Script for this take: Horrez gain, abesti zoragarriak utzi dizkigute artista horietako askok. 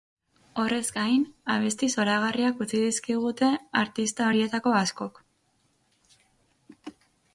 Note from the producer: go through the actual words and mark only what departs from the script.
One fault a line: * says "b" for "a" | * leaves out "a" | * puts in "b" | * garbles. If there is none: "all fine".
all fine